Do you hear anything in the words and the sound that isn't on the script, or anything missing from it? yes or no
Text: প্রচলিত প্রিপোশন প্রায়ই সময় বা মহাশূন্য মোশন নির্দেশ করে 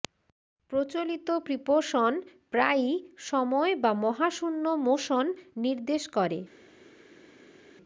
no